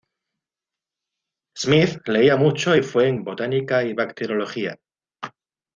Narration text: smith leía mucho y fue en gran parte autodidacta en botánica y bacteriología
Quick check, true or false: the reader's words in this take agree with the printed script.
false